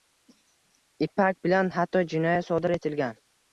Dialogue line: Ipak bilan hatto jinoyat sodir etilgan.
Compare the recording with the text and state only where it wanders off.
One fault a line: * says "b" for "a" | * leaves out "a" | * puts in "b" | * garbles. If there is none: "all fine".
all fine